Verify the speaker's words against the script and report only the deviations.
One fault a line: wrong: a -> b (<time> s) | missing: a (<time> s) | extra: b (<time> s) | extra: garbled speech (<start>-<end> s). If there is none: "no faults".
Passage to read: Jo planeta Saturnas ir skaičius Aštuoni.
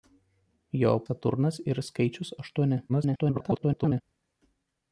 missing: planeta (0.9 s)
extra: garbled speech (2.9-4.0 s)